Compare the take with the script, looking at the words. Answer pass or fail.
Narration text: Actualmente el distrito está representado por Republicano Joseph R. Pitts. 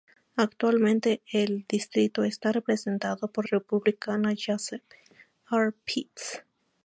pass